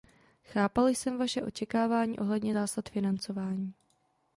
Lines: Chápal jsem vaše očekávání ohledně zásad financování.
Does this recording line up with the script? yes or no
yes